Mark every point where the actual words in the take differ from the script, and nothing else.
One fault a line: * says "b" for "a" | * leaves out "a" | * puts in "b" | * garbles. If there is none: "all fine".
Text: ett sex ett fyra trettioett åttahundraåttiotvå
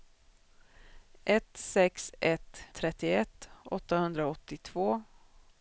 * leaves out "fyra"